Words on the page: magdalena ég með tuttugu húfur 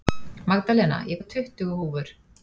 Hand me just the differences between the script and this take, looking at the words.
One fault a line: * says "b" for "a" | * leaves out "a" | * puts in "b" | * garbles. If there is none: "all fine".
all fine